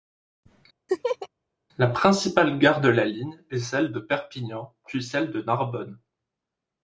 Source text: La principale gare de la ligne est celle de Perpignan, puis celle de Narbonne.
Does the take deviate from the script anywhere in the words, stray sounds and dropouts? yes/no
yes